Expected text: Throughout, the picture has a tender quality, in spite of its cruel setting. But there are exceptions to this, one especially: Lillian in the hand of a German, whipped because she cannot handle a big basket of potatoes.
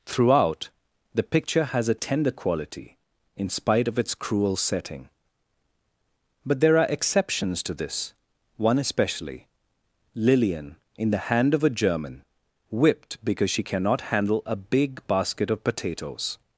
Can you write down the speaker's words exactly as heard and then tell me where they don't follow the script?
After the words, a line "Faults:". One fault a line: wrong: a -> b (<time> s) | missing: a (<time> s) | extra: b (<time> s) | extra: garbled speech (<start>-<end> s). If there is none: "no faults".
Throughout, the picture has a tender quality, in spite of its cruel setting. But there are exceptions to this, one especially: Lillian in the hand of a German, whipped because she cannot handle a big basket of potatoes.
Faults:
no faults